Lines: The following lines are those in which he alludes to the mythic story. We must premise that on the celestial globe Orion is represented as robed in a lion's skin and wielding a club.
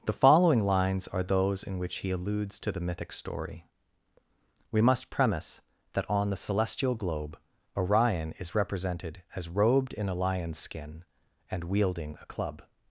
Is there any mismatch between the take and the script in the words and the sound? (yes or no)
no